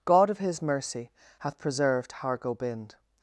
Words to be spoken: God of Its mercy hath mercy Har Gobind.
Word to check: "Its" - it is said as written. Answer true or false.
false